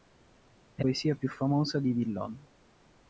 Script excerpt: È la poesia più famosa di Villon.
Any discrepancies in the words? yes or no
yes